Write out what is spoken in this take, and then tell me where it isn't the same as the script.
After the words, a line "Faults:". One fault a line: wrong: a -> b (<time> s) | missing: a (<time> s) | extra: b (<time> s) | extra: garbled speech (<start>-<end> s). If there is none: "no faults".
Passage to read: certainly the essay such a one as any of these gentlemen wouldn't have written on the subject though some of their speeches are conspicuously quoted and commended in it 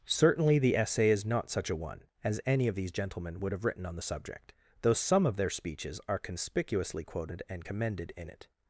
certainly the essay is not such a one as any of these gentlemen would have written on the subject though some of their speeches are conspicuously quoted and commended in it
Faults:
extra: is not (1.1 s)
wrong: wouldn't -> would (3.4 s)